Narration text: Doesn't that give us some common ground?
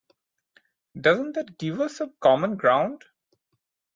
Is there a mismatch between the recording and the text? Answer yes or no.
no